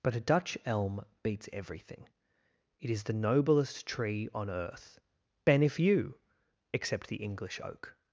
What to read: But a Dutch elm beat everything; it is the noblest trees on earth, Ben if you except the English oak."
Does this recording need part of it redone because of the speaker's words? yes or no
yes